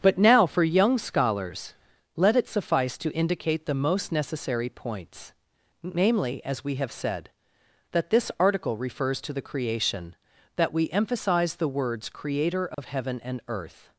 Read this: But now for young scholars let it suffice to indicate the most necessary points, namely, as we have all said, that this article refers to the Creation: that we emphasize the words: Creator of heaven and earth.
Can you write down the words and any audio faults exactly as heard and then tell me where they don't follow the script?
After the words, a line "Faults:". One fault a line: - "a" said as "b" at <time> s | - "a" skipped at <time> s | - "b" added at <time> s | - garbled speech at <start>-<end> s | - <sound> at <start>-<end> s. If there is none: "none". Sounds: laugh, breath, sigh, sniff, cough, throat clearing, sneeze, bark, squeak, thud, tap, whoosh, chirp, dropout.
But now for young scholars let it suffice to indicate the most necessary points, namely, as we have said, that this article refers to the Creation: that we emphasize the words: Creator of heaven and earth.
Faults:
- "all" skipped at 6.9 s
- dropout at 12.7-12.8 s